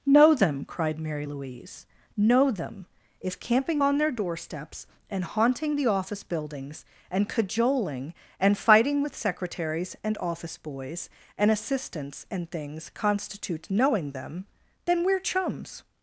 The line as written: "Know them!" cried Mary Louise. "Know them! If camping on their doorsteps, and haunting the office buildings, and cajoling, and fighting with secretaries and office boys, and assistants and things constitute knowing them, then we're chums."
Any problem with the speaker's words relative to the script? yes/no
no